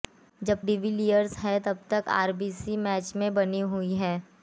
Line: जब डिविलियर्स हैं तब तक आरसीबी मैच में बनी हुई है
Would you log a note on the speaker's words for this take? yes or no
no